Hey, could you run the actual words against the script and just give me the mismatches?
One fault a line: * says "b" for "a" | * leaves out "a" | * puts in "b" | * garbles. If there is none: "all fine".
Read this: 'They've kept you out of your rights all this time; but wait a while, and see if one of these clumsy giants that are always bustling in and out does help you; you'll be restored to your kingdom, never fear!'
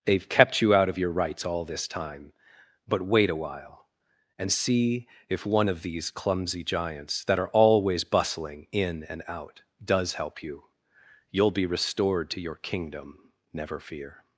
all fine